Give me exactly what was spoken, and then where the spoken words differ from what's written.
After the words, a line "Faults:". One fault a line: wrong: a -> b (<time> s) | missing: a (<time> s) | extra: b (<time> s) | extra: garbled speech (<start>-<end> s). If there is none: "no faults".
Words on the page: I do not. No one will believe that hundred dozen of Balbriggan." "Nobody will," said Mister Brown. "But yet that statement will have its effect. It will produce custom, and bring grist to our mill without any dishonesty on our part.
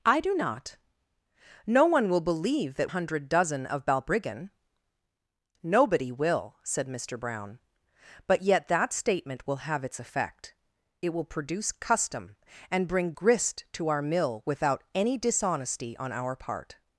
I do not. No one will believe that hundred dozen of Balbriggan." "Nobody will," said Mister Brown. "But yet that statement will have its effect. It will produce custom, and bring grist to our mill without any dishonesty on our part.
Faults:
no faults